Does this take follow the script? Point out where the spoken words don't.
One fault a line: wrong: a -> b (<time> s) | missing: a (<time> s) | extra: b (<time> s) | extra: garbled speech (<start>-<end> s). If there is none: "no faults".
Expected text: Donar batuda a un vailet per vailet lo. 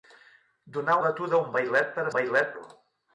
no faults